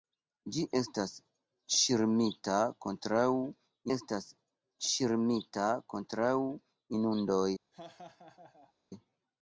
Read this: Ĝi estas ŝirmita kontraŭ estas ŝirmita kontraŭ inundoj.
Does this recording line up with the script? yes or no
yes